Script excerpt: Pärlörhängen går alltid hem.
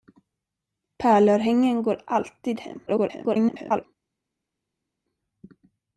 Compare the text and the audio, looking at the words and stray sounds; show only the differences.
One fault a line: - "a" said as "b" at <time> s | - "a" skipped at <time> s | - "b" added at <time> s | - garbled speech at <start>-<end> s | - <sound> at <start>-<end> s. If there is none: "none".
- garbled speech at 2.9-3.9 s